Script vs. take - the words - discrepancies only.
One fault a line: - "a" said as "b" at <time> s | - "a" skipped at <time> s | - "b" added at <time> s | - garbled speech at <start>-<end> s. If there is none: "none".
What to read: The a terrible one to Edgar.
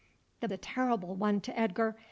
none